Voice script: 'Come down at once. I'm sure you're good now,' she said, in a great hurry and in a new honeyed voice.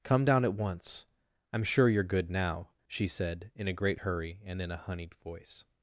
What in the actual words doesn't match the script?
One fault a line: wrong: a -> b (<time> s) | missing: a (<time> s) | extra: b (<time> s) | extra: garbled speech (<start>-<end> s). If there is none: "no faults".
missing: new (4.8 s)